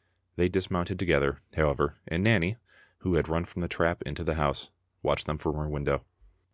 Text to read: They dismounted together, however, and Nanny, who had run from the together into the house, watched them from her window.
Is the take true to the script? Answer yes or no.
no